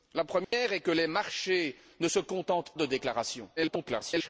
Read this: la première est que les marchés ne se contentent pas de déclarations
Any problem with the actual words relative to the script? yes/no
yes